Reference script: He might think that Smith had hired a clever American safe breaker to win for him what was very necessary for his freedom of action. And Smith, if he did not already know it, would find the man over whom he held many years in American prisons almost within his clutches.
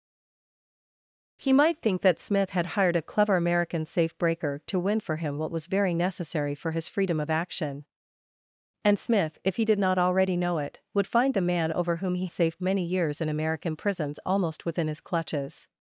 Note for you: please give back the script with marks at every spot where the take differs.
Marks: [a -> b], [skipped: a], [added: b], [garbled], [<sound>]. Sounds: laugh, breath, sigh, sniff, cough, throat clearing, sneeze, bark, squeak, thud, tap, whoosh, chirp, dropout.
He might think that Smith had hired a clever American safe breaker to win for him what was very necessary for his freedom of action. And Smith, if he did not already know it, would find the man over whom he [held -> safe] many years in American prisons almost within his clutches.